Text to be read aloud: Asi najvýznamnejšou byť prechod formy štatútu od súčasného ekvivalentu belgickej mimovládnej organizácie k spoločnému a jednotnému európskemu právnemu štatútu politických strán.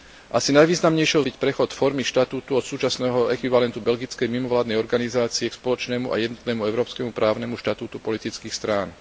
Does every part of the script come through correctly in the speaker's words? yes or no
yes